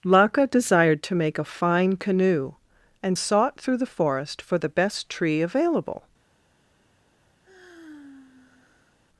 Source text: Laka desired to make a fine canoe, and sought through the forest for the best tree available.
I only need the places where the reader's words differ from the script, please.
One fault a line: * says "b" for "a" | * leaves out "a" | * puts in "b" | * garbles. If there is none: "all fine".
all fine